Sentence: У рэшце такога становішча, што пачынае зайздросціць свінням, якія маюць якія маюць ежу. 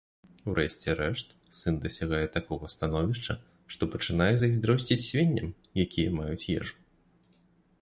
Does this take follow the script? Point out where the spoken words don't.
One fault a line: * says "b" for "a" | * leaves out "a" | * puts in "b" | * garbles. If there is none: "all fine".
* puts in "рэшт сын дасягае"
* leaves out "якія маюць"